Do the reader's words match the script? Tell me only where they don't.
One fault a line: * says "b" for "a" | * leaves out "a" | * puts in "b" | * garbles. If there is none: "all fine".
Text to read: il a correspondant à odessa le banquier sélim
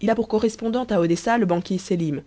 * puts in "pour"